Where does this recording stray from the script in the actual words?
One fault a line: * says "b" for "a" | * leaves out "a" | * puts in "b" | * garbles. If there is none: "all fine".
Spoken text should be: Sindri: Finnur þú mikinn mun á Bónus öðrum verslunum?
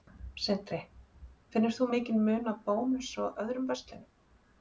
* puts in "og"